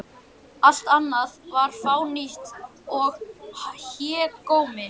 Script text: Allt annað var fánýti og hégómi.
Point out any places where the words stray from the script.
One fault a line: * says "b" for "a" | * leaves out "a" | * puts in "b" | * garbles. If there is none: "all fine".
all fine